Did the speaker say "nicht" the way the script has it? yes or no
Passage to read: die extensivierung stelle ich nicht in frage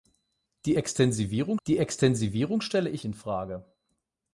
no